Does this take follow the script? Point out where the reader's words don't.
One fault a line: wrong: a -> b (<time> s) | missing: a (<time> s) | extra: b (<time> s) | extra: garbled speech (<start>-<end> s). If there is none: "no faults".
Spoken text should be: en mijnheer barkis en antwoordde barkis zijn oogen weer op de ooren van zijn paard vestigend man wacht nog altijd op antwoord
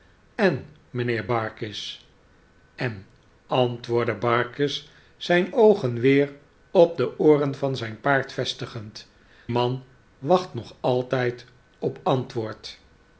no faults